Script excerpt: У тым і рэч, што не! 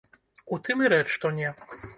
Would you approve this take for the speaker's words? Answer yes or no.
yes